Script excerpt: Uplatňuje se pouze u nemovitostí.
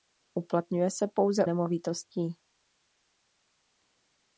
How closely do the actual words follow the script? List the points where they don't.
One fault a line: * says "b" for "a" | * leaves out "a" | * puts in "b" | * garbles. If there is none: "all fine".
* leaves out "u"